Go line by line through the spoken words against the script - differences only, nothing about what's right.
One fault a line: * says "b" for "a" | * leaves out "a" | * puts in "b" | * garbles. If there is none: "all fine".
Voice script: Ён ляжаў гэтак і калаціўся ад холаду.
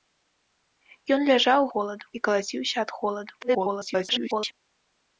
* says "холаду" for "гэтак"
* garbles